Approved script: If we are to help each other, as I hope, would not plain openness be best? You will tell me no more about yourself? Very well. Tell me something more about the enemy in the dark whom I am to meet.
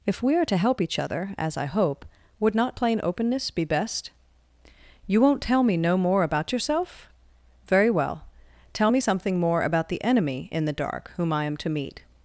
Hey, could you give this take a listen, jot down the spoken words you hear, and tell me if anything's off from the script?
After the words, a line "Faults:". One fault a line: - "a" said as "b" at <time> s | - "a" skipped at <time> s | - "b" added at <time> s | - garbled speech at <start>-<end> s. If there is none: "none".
If we are to help each other, as I hope, would not plain openness be best? You won't tell me no more about yourself? Very well. Tell me something more about the enemy in the dark whom I am to meet.
Faults:
- "will" said as "won't" at 5.2 s